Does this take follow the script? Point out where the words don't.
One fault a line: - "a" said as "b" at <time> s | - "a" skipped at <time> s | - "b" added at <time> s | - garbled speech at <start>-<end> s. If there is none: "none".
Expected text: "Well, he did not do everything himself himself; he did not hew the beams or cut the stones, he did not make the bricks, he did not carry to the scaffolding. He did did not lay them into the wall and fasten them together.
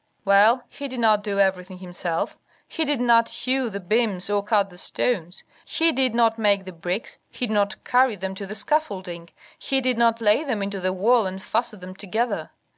- "himself" skipped at 2.4 s
- "them" added at 8.2 s
- "did" skipped at 10.0 s